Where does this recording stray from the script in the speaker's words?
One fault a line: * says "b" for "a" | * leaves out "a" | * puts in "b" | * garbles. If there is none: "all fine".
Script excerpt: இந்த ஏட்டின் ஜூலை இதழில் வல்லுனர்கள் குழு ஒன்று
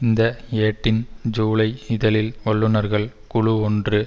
all fine